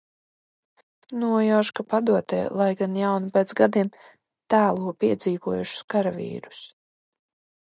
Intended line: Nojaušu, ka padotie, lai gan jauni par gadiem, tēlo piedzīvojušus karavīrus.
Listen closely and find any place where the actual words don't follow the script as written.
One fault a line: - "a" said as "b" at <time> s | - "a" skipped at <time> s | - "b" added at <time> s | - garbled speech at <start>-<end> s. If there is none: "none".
- "par" said as "pēc" at 3.4 s